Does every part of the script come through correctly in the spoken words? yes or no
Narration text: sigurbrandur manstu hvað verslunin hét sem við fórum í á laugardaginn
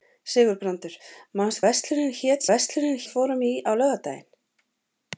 no